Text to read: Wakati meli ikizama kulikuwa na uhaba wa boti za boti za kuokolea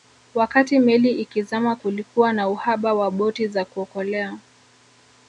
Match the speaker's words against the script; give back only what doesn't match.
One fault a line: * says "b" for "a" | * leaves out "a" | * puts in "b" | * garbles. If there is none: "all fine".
* leaves out "boti za"